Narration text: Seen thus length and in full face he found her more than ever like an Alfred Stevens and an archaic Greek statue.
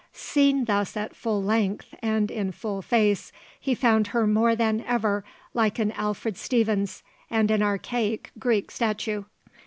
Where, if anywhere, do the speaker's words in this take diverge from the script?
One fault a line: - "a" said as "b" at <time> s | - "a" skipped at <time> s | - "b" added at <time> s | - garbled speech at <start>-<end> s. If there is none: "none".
- "at full" added at 1.0 s